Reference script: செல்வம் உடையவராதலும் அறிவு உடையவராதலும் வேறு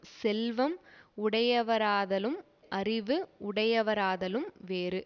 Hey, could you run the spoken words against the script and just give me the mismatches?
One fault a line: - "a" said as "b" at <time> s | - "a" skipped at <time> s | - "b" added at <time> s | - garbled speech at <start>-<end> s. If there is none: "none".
none